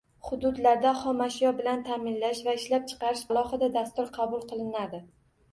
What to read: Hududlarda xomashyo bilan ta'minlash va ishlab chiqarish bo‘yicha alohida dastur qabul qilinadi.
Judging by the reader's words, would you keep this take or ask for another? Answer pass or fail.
fail